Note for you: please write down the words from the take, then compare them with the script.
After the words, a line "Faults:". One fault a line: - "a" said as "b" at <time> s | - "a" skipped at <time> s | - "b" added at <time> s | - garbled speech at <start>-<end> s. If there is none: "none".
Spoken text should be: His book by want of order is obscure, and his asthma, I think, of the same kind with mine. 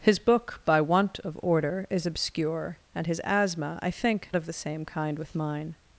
His book by want of order is obscure, and his asthma, I think, of the same kind with mine.
Faults:
none